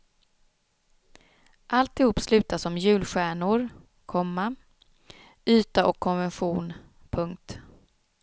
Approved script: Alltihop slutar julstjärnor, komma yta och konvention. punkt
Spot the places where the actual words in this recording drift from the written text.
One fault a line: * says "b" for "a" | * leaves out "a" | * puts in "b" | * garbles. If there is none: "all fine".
* puts in "som"